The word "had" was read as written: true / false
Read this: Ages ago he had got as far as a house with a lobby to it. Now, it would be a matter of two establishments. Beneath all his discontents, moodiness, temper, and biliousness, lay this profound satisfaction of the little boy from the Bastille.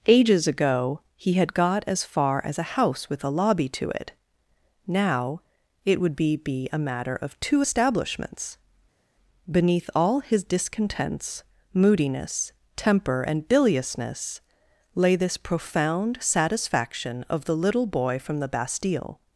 true